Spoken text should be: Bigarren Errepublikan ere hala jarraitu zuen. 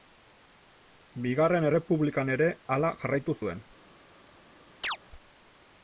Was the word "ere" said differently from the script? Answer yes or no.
no